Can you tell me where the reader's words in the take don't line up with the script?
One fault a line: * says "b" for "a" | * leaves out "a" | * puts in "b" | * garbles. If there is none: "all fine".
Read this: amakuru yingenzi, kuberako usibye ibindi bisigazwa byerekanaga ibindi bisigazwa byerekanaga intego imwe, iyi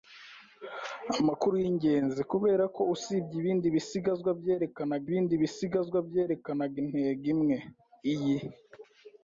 all fine